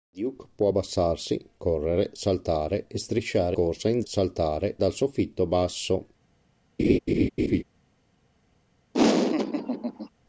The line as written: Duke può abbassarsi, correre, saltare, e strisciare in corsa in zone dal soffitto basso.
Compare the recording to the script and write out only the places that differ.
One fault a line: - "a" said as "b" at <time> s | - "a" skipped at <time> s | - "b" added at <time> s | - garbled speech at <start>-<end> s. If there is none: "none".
- "in" skipped at 3.6 s
- "zone" said as "saltare" at 4.0 s